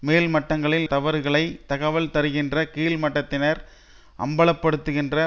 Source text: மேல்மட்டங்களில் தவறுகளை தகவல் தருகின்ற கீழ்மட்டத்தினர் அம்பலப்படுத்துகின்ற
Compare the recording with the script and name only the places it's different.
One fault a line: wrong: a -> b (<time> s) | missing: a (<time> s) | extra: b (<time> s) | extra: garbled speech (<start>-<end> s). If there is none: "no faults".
no faults